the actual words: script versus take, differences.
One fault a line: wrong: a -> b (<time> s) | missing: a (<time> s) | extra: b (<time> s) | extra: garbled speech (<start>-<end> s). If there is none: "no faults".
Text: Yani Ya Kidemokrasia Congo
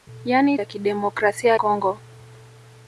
no faults